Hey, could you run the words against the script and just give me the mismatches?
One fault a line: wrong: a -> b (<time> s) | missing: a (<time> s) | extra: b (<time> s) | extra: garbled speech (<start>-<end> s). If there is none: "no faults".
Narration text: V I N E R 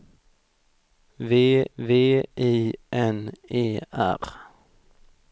extra: v (1.8 s)